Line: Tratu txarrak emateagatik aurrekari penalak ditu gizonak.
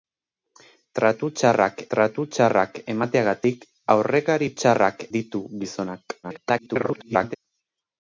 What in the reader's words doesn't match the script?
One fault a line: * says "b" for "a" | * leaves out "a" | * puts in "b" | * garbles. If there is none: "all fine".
* puts in "tratu txarrak"
* says "txarrak" for "penalak"
* garbles